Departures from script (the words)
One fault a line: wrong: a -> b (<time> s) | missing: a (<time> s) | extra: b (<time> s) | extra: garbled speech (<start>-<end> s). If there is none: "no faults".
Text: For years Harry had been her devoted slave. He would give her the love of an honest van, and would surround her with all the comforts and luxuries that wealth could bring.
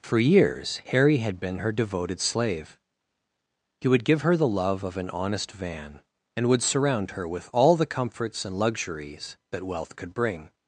no faults